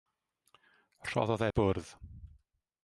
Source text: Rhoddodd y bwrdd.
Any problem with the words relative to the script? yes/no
no